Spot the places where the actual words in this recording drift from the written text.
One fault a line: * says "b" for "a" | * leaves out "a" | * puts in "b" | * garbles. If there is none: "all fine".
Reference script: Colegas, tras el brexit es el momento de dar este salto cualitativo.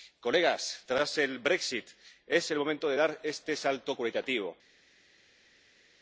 all fine